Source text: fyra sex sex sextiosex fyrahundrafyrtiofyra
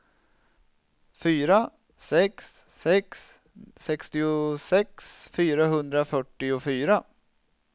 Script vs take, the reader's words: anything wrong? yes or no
no